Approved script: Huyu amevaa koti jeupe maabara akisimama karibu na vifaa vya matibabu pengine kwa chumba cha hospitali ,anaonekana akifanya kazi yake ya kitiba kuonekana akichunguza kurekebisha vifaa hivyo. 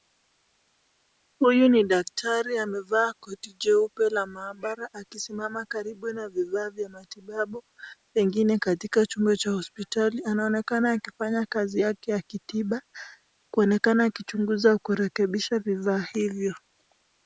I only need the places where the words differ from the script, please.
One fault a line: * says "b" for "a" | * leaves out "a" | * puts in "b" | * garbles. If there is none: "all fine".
* puts in "ni daktari"
* puts in "la"
* says "katika" for "kwa"